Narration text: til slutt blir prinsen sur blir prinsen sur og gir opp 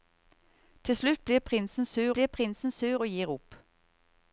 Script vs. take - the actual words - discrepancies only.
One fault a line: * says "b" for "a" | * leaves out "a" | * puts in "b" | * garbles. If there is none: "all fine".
all fine